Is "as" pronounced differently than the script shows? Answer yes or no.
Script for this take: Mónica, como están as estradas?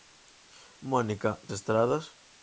yes